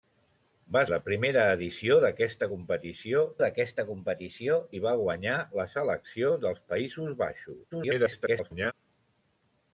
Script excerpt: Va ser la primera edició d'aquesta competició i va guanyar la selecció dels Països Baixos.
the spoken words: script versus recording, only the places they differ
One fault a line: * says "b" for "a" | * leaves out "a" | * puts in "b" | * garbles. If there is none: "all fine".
* leaves out "ser"
* puts in "d'aquesta competició"
* garbles